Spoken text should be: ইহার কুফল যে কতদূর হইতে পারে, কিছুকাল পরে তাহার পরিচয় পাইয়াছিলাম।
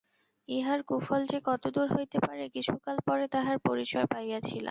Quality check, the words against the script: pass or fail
pass